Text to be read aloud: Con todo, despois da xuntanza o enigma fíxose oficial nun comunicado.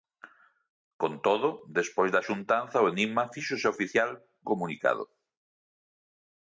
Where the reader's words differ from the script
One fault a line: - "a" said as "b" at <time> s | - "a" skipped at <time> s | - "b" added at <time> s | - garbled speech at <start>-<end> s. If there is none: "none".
- "nun" skipped at 4.1 s